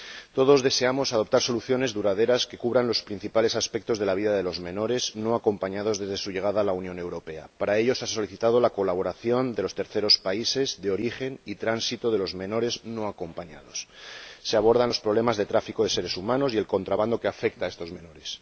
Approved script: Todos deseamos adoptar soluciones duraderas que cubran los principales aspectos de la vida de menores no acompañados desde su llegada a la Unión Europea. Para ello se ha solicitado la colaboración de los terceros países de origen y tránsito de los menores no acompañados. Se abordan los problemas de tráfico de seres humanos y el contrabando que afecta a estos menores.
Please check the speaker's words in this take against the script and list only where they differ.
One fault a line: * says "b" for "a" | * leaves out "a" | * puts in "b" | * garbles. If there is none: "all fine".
* puts in "los"